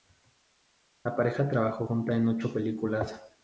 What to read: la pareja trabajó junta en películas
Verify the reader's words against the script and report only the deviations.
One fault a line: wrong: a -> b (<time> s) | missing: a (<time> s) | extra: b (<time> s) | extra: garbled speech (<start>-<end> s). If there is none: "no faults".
extra: ocho (2.3 s)